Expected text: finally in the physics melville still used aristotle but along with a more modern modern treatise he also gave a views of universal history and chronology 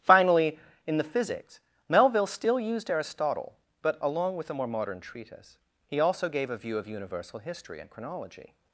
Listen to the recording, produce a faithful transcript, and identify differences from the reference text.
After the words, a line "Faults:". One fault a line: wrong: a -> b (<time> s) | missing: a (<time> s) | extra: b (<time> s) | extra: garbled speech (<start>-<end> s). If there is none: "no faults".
finally in the physics melville still used aristotle but along with a more modern treatise he also gave a view of universal history and chronology
Faults:
missing: modern (5.0 s)
wrong: views -> view (6.6 s)